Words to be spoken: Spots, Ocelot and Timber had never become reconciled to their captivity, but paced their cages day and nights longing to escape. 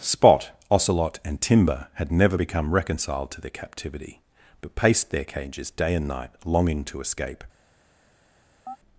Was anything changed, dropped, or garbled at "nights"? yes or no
yes